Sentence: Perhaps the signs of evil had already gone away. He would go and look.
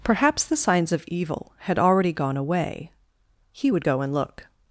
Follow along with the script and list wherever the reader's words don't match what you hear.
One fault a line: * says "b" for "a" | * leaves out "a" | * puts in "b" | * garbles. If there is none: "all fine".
all fine